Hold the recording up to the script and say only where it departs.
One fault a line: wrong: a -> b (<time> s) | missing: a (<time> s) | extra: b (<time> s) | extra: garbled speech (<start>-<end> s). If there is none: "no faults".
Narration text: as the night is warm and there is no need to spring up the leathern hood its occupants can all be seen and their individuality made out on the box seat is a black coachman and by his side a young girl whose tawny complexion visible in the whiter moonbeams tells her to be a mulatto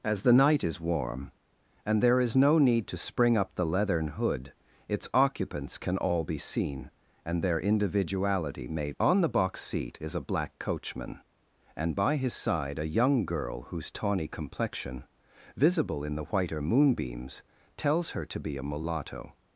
missing: out (9.0 s)